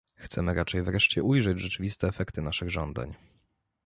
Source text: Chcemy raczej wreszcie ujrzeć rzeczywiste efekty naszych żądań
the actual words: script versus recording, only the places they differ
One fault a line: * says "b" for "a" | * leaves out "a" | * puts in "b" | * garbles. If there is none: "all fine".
all fine